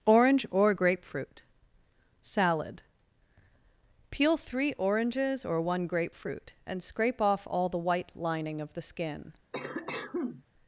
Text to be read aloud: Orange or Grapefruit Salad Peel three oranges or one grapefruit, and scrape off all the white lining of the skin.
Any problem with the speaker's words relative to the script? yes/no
no